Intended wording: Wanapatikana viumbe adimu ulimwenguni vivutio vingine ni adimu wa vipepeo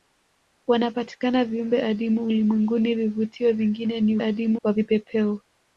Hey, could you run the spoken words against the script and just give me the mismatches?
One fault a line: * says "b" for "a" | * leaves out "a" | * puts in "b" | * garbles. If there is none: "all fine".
all fine